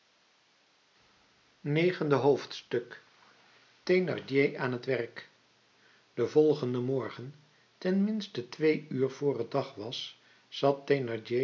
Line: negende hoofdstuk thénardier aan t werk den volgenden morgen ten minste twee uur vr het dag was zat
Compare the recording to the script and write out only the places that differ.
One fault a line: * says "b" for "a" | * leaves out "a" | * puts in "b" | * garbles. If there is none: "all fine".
all fine